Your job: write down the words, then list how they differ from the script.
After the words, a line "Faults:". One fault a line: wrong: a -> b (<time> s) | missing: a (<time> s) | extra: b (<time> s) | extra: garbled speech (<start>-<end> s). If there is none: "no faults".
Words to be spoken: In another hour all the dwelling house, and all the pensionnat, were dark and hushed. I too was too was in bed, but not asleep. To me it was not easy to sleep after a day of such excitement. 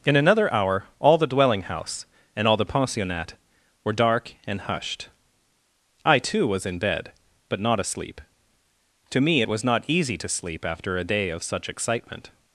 In another hour all the dwelling house, and all the pensionnat, were dark and hushed. I too was in bed, but not asleep. To me it was not easy to sleep after a day of such excitement.
Faults:
missing: too was (6.7 s)